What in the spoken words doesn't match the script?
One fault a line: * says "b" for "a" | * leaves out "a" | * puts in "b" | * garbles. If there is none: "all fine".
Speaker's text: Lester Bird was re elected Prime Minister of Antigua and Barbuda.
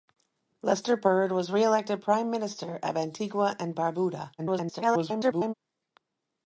* garbles